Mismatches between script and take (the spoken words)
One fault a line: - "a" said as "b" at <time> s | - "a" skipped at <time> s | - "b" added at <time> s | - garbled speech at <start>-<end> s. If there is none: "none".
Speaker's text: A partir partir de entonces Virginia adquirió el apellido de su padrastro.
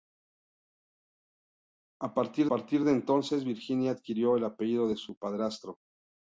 none